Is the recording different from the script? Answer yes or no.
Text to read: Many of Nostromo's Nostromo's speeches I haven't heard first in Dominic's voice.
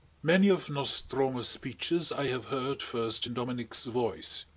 yes